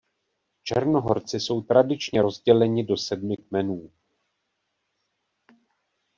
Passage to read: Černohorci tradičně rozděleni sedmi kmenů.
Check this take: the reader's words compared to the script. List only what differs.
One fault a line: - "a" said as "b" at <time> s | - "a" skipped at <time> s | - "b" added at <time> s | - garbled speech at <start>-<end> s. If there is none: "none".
- "jsou" added at 1.4 s
- "do" added at 2.8 s